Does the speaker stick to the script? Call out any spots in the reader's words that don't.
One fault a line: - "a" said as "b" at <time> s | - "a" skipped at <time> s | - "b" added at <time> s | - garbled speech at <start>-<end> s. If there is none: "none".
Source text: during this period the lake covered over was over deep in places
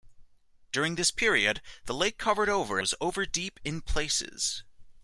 none